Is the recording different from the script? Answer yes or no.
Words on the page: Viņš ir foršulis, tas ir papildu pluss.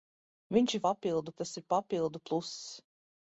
yes